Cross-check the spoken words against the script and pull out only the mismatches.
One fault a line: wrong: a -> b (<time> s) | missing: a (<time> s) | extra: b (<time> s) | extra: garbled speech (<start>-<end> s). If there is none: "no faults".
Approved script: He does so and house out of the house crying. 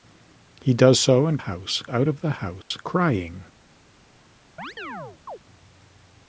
no faults